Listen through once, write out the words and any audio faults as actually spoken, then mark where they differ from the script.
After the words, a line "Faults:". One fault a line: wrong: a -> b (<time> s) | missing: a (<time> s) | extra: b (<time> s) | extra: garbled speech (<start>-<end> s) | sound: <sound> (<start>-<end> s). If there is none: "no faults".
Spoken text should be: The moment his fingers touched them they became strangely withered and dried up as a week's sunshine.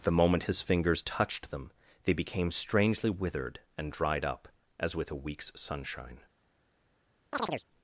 The moment his fingers touched them they became strangely withered and dried up as with a week's sunshine.
Faults:
extra: with (5.0 s)
sound: chirp (7.3-7.6 s)